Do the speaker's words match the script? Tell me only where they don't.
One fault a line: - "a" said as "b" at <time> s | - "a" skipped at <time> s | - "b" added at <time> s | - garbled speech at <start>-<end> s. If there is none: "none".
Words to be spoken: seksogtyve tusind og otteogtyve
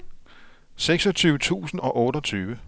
none